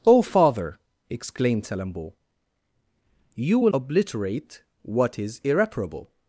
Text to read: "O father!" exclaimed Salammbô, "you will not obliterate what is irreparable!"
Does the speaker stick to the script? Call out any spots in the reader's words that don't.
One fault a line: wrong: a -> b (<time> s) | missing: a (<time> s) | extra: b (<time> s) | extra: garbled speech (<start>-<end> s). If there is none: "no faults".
missing: not (3.7 s)